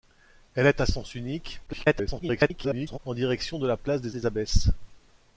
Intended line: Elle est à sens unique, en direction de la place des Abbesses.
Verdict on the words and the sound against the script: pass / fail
fail